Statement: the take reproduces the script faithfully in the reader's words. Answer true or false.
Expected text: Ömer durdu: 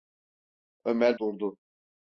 true